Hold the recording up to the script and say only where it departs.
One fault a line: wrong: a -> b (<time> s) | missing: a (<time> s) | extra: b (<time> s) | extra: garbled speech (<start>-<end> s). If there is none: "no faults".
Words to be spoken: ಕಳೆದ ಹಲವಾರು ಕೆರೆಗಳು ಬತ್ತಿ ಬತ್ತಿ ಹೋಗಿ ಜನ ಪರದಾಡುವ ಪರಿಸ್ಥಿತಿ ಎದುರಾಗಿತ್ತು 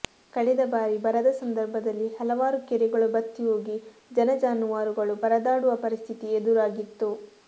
extra: ಬಾರಿ ಬರದ ಸಂದರ್ಭದಲ್ಲಿ (0.7 s)
missing: ಬತ್ತಿ (3.4 s)
extra: ಜಾನುವಾರುಗಳು (4.4 s)